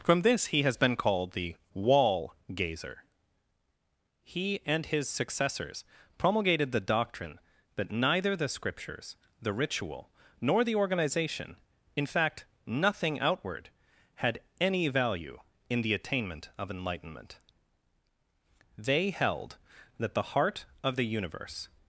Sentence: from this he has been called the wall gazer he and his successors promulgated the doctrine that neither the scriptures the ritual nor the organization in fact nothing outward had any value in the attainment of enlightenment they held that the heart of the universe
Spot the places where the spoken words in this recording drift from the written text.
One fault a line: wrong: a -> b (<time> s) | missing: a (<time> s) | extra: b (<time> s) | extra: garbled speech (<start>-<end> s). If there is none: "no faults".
no faults